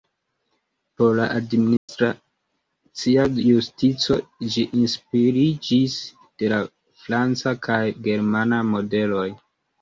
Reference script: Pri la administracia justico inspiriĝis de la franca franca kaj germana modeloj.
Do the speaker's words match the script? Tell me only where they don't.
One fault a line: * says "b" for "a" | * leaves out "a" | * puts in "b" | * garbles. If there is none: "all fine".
* says "Por" for "Pri"
* puts in "ĝi"
* leaves out "franca"